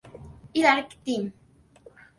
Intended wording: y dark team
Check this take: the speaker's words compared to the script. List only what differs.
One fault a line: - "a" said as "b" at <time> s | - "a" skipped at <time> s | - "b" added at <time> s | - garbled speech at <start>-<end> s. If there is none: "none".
none